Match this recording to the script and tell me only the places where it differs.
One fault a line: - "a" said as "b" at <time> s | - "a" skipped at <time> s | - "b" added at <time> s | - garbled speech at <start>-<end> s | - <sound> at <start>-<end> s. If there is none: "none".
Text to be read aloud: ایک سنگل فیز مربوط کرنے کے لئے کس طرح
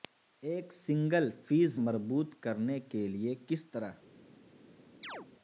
- chirp at 5.0-5.3 s